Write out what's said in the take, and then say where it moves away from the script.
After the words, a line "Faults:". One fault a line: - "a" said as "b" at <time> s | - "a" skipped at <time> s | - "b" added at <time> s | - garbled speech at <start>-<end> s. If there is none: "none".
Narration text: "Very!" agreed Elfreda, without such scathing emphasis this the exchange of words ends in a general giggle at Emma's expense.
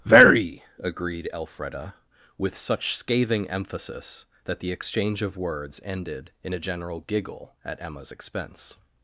"Very!" agreed Elfreda, with such scathing emphasis that the exchange of words ended in a general giggle at Emma's expense.
Faults:
- "without" said as "with" at 2.4 s
- "this" said as "that" at 4.4 s
- "ends" said as "ended" at 5.8 s